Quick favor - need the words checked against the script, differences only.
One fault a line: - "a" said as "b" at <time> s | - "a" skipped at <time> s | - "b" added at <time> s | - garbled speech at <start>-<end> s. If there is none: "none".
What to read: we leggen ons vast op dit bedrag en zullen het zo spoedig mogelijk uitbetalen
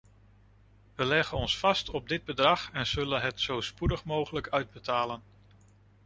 none